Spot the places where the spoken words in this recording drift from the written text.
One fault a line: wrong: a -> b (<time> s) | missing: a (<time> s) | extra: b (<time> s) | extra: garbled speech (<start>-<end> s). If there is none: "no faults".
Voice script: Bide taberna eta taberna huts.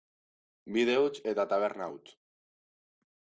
wrong: taberna -> huts (1.0 s)